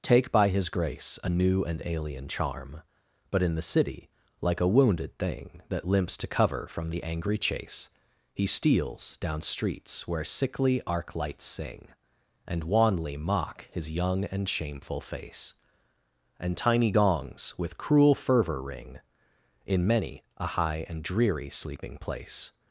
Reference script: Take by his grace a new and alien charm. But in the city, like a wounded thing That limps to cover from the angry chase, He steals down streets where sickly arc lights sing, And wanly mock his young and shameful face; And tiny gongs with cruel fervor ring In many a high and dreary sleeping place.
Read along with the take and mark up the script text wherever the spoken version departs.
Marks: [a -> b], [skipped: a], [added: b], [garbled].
Take by his grace a new and alien charm. But in the city, like a wounded thing That limps to cover from the angry chase, He steals down streets where sickly arc lights sing, And wanly mock his young and shameful face; And tiny gongs with cruel fervor ring In many a high and dreary sleeping place.